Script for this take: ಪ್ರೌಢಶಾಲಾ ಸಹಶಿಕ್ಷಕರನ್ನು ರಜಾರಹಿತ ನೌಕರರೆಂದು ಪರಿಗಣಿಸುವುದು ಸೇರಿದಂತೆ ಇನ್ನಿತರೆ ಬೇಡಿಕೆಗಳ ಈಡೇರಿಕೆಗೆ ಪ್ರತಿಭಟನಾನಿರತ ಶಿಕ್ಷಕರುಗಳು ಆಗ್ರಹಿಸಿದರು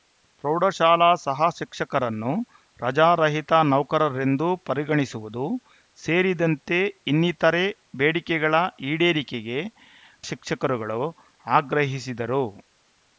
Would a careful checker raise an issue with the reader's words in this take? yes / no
yes